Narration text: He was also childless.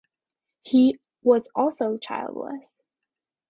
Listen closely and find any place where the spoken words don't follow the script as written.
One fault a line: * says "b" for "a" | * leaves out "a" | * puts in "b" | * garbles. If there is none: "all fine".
all fine